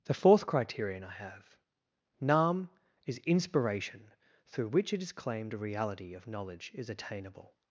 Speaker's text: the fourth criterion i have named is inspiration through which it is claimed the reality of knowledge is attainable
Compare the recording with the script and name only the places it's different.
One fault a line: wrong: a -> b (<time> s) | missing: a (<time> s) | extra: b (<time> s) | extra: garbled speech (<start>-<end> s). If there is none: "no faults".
wrong: named -> nam (2.2 s)
wrong: the -> a (5.5 s)